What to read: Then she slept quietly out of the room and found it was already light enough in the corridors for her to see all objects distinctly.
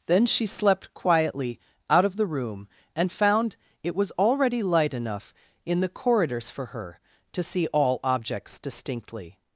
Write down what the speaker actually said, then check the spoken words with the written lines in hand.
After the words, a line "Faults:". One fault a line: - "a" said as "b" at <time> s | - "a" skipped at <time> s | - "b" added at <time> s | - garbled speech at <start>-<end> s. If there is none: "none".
Then she slept quietly out of the room and found it was already light enough in the corridors for her to see all objects distinctly.
Faults:
none